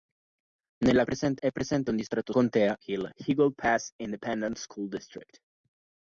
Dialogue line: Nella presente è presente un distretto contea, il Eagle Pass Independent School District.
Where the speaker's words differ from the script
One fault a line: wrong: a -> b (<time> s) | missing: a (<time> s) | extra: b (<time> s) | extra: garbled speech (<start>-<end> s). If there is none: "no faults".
no faults